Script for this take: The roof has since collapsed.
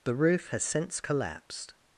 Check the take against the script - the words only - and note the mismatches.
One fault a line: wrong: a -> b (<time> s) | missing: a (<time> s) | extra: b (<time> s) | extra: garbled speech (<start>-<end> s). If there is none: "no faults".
no faults